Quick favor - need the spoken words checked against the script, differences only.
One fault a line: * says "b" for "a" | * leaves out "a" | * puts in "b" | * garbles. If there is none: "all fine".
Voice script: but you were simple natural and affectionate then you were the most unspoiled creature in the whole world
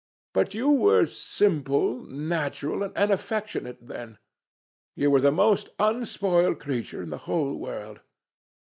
all fine